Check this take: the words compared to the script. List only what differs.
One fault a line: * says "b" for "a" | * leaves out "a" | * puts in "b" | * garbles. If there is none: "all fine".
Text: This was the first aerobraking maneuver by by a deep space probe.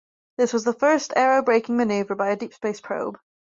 * leaves out "by"